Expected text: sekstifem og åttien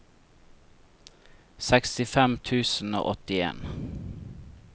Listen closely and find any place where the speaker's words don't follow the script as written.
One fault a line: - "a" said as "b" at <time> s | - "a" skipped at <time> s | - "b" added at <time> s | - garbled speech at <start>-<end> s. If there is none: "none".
- "tusen" added at 2.5 s